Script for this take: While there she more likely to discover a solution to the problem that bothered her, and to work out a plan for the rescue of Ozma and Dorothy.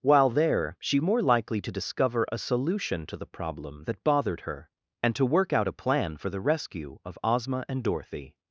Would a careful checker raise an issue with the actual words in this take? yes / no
no